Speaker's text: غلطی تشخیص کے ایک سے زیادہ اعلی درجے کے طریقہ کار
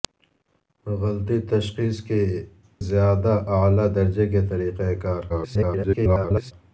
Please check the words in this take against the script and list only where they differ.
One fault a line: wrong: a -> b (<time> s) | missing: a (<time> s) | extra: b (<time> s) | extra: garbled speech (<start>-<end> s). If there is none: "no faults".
missing: ایک سے (2.2 s)
extra: garbled speech (5.3-6.5 s)